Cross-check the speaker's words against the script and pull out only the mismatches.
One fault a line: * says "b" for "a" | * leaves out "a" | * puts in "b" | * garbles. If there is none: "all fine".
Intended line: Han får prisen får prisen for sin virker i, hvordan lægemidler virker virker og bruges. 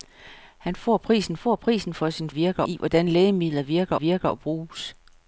all fine